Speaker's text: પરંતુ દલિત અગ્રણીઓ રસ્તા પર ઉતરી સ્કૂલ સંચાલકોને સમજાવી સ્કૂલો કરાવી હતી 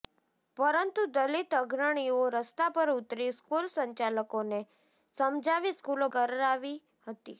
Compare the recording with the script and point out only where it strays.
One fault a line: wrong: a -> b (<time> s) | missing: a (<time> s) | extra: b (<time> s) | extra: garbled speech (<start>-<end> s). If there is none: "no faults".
no faults